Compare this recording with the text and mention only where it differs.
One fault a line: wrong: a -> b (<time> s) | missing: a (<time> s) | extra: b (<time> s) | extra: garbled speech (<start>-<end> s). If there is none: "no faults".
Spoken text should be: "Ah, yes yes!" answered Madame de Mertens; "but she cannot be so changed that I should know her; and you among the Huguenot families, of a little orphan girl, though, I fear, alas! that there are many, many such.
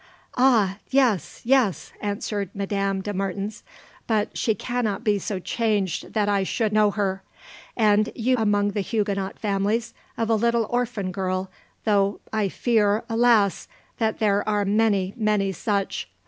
no faults